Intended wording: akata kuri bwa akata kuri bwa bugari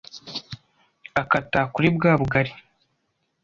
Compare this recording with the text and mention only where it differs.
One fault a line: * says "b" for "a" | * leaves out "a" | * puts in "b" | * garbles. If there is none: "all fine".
* leaves out "akata kuri bwa"